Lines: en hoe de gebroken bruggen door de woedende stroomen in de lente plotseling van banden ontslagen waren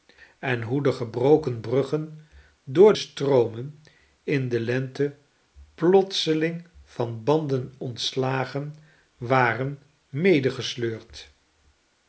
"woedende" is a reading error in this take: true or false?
true